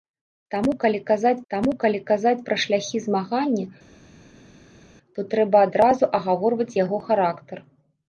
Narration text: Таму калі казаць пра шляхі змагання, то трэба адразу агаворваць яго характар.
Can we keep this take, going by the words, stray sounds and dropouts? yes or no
no